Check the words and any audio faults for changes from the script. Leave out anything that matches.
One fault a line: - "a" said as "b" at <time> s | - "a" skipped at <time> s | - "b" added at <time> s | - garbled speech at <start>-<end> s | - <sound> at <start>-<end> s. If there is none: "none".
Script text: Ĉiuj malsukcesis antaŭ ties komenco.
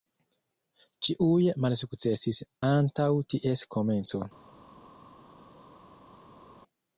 none